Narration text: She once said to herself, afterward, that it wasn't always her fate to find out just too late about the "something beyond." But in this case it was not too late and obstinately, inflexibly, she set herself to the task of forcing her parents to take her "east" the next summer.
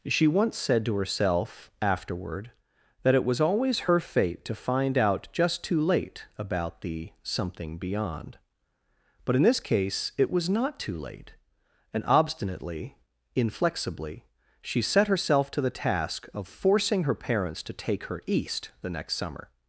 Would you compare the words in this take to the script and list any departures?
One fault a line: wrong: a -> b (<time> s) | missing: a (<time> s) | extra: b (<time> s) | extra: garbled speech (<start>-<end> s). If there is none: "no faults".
wrong: wasn't -> was (3.2 s)